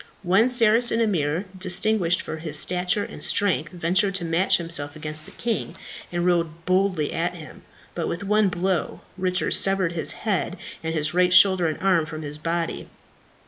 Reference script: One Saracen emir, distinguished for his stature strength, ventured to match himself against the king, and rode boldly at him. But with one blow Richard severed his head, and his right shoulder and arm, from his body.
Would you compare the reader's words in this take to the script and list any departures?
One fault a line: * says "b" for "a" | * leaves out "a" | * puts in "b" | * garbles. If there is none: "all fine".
* puts in "and"